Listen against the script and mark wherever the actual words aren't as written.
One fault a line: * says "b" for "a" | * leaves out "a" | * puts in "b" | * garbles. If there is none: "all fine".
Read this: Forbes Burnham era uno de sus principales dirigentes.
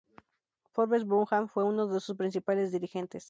* says "fue" for "era"